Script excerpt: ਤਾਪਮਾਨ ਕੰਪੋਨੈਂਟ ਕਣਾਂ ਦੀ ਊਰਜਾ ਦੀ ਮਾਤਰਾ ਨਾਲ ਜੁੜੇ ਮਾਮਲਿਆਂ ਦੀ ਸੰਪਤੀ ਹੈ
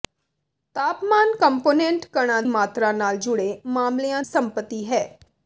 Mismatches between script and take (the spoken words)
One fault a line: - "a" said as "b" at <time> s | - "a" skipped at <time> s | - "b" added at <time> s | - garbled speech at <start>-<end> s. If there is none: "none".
- "ਦੀ ਊਰਜਾ ਦੀ" skipped at 2.4 s
- "ਦੀ" skipped at 4.2 s